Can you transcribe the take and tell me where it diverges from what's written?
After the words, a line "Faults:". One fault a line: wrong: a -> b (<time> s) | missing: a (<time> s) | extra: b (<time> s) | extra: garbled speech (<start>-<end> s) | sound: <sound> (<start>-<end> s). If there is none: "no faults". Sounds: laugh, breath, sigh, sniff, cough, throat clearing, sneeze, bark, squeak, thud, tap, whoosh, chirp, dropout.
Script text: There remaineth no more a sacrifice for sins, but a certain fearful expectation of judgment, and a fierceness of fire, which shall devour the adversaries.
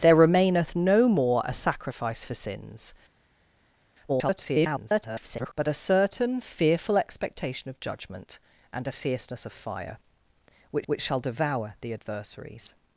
There remaineth no more a sacrifice for sins, [garbled] but a certain fearful expectation of judgment, and a fierceness of fire, which which shall devour the adversaries.
Faults:
extra: garbled speech (4.1-5.5 s)
extra: which (10.9 s)